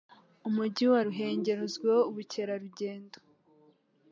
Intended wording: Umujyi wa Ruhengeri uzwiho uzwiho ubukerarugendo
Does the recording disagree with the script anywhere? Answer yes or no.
yes